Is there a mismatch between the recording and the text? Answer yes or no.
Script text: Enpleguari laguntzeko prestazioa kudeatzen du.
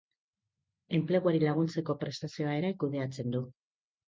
yes